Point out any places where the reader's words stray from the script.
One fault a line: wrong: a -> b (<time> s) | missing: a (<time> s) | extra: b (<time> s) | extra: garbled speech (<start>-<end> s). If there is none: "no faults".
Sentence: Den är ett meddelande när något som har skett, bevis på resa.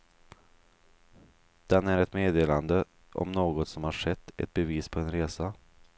wrong: när -> om (3.1 s)
extra: ett (4.4 s)
extra: en (5.0 s)